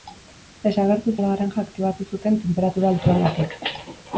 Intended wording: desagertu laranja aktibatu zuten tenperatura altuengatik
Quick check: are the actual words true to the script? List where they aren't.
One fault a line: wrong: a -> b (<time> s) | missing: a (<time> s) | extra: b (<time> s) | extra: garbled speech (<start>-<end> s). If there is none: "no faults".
no faults